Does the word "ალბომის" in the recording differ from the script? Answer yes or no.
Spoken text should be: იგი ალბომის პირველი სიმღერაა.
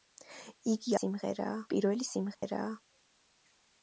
yes